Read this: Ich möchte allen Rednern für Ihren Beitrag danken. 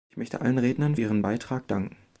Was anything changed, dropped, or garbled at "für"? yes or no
yes